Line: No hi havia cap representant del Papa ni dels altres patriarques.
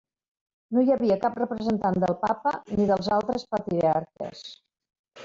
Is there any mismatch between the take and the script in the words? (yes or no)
no